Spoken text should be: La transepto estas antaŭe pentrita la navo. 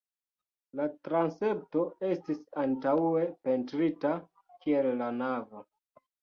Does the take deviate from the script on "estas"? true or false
true